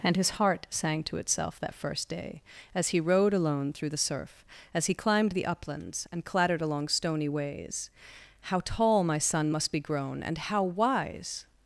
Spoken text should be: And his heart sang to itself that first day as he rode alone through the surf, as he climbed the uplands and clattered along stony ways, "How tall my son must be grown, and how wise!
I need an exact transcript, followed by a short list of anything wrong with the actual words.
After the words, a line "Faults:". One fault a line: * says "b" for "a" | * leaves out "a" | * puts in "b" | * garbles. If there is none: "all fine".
And his heart sang to itself that first day as he rode alone through the surf, as he climbed the uplands and clattered along stony ways, "How tall my son must be grown, and how wise!
Faults:
all fine